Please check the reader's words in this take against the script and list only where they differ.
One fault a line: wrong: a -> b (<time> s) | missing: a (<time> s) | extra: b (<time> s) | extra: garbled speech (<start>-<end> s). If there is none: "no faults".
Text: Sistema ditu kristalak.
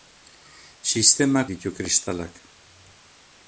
no faults